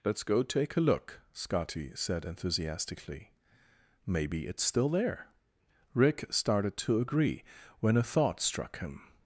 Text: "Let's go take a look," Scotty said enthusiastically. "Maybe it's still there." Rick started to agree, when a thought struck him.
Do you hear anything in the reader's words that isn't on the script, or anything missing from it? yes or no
no